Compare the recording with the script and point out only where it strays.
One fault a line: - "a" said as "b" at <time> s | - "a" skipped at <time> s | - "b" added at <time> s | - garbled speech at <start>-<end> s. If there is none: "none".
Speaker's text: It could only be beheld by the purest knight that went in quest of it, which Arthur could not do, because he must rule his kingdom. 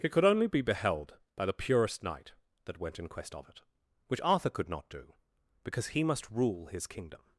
none